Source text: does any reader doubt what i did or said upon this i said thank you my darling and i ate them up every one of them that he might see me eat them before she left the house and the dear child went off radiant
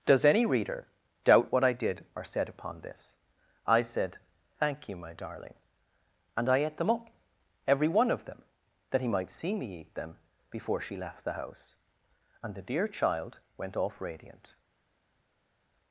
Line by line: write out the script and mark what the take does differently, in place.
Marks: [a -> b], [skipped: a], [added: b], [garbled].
does any reader doubt what i did or said upon this i said thank you my darling and i ate them up every one of them that he might see me eat them before she left the house and the dear child went off radiant